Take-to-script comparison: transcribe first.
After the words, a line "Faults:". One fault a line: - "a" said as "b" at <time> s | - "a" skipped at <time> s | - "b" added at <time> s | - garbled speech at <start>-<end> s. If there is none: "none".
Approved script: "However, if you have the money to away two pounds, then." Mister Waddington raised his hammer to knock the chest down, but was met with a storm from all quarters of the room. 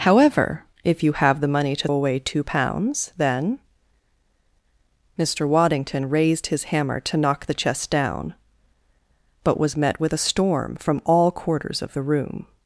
"However, if you have the money to away two pounds, then." Mister Waddington raised his hammer to knock the chest down, but was met with a storm from all quarters of the room.
Faults:
none